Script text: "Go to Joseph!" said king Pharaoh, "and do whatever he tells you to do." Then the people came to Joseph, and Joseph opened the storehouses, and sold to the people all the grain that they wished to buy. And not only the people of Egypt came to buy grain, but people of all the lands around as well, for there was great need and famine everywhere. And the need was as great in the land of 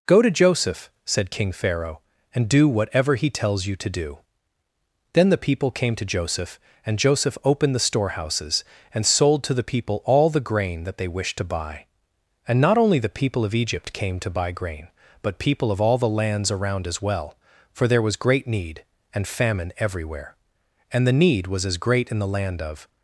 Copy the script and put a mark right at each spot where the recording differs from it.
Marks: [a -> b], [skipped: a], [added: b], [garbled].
"Go to Joseph!" said king Pharaoh, "and do whatever he tells you to do." Then the people came to Joseph, and Joseph opened the storehouses, and sold to the people all the grain that they wished to buy. And not only the people of Egypt came to buy grain, but people of all the lands around as well, for there was great need and famine everywhere. And the need was as great in the land of